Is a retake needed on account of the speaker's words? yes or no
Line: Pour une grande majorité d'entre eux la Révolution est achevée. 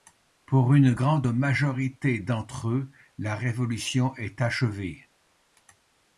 no